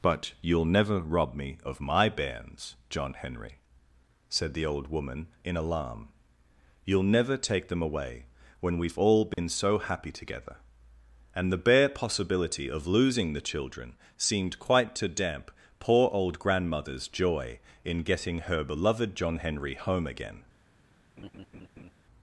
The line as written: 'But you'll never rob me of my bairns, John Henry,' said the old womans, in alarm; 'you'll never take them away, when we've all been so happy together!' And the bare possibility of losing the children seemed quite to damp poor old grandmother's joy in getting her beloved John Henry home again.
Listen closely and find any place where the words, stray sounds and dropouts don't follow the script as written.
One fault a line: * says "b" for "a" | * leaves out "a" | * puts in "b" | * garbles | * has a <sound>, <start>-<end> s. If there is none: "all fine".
* says "woman" for "womans"
* has a dropout, 9.3-9.4 s
* has a laugh, 21.2-21.9 s